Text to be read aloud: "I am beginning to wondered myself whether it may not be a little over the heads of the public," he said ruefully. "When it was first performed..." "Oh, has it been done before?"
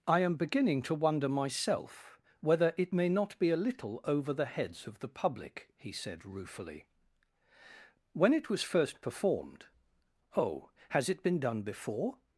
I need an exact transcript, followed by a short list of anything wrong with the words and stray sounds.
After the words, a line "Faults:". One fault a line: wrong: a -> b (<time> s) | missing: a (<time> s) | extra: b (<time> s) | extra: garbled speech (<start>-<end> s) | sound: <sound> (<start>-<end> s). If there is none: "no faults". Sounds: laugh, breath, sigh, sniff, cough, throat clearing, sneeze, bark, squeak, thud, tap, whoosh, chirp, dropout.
"I am beginning to wonder myself whether it may not be a little over the heads of the public," he said ruefully. "When it was first performed..." "Oh, has it been done before?"
Faults:
wrong: wondered -> wonder (0.9 s)